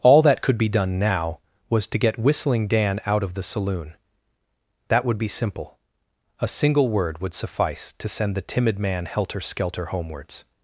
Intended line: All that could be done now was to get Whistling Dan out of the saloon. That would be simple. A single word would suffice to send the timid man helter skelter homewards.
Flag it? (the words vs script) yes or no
no